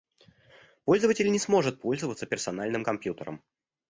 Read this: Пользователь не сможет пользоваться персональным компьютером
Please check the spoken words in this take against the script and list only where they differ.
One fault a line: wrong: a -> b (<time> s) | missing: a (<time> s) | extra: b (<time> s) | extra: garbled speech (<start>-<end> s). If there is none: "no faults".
no faults